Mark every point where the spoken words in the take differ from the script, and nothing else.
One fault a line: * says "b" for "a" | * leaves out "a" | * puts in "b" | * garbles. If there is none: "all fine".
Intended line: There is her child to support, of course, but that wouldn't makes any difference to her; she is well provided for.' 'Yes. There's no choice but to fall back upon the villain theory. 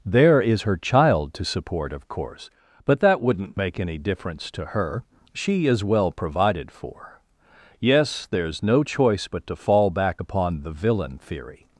* says "make" for "makes"